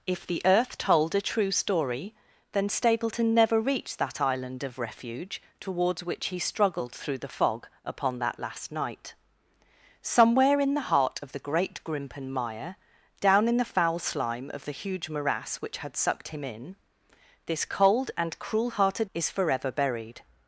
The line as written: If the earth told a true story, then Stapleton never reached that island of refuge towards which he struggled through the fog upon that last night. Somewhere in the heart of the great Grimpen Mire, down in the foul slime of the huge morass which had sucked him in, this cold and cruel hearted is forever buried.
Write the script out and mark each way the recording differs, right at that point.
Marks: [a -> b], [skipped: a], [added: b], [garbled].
If the earth told a true story, then Stapleton never reached that island of refuge towards which he struggled through the fog upon that last night. Somewhere in the heart of the great Grimpen Mire, down in the foul slime of the huge morass which had sucked him in, this cold and cruel hearted is forever buried.